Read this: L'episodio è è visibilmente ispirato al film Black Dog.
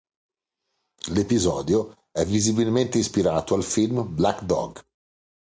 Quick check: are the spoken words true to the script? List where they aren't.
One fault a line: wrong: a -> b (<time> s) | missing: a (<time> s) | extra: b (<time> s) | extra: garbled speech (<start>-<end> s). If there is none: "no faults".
missing: è (2.2 s)